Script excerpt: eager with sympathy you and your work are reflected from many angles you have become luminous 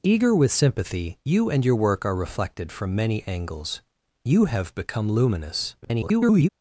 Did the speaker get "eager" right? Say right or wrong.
right